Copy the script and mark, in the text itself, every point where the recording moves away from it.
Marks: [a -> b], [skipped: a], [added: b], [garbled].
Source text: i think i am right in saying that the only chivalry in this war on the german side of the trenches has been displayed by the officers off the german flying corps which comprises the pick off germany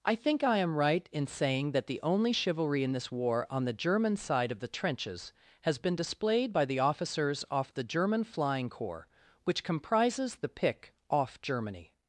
i think i am right in saying that the only chivalry in this war on the german side of the trenches has been displayed by the officers off the german flying corps which comprises the pick off germany